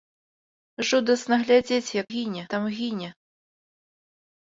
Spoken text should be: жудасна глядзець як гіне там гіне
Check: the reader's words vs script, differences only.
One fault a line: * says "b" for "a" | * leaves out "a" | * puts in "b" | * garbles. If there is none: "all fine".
all fine